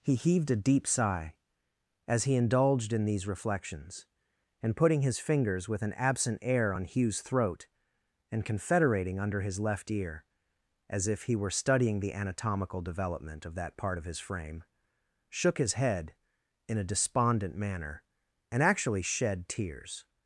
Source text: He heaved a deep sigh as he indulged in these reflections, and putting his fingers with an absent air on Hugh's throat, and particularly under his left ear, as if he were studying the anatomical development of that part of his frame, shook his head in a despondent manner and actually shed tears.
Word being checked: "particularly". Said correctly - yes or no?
no